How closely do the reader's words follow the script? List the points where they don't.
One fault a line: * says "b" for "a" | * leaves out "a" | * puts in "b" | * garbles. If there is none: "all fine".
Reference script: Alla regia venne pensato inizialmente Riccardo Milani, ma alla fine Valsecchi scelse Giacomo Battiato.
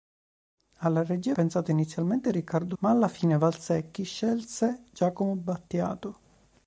* leaves out "venne"
* leaves out "Milani"